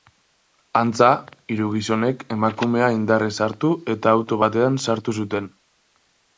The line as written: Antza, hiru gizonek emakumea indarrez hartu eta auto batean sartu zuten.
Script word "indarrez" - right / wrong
right